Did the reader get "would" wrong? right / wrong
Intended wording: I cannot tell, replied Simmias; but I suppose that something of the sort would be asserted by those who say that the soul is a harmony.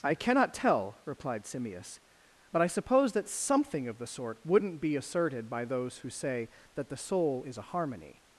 wrong